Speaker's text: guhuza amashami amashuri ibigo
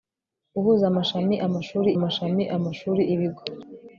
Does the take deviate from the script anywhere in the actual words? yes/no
yes